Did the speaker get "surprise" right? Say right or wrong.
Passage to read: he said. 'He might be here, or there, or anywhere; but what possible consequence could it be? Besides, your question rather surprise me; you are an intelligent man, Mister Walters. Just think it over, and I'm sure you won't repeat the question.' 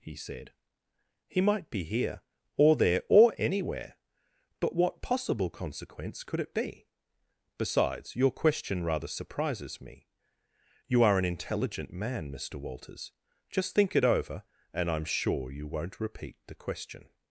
wrong